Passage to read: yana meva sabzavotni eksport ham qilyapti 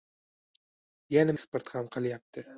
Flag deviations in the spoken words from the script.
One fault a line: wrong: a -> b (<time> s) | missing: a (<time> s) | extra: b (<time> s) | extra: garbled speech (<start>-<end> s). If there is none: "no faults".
missing: meva sabzavotni (1.4 s)